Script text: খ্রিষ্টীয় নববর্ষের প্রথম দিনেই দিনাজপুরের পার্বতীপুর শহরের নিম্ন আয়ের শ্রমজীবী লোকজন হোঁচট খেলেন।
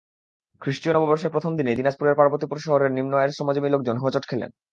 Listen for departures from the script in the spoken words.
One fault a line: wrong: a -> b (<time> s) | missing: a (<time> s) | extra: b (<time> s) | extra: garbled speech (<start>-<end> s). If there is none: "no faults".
no faults